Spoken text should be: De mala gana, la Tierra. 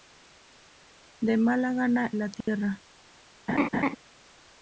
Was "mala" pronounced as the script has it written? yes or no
yes